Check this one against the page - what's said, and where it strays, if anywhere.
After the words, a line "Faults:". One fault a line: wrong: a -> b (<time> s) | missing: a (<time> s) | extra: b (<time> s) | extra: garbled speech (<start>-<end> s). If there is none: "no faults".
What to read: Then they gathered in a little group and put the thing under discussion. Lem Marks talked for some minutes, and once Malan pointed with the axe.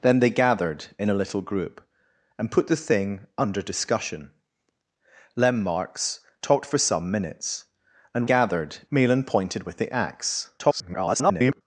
Then they gathered in a little group and put the thing under discussion. Lem Marks talked for some minutes, and gathered Malan pointed with the axe. [garbled]
Faults:
wrong: once -> gathered (8.2 s)
extra: garbled speech (10.6-11.6 s)